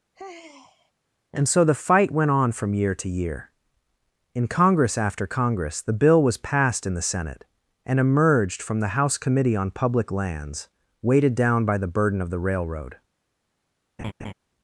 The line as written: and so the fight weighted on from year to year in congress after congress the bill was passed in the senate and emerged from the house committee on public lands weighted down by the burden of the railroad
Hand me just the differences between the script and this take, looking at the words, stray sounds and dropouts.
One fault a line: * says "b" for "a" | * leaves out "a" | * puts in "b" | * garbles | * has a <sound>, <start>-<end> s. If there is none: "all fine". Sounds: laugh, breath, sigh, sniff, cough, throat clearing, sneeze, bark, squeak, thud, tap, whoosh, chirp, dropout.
* has a sigh, 0.1-0.9 s
* says "went" for "weighted"
* has a laugh, 14.0-14.3 s